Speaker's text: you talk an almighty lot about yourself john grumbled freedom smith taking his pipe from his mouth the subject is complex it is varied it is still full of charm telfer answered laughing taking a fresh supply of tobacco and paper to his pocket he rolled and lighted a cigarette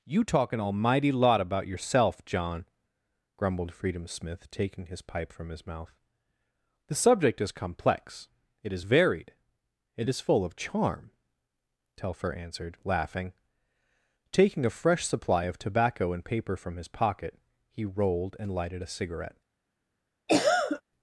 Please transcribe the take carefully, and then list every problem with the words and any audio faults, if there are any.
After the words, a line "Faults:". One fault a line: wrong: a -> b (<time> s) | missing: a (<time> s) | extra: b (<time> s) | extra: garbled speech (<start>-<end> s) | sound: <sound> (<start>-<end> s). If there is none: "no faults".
you talk an almighty lot about yourself john grumbled freedom smith taking his pipe from his mouth the subject is complex it is varied it is full of charm telfer answered laughing taking a fresh supply of tobacco and paper from his pocket he rolled and lighted a cigarette
Faults:
missing: still (10.2 s)
wrong: to -> from (16.6 s)
sound: cough (20.3-20.8 s)